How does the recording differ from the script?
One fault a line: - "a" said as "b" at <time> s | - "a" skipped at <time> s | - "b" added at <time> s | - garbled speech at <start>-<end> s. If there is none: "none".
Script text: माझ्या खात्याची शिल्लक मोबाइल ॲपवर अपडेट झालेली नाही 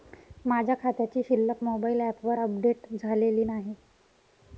none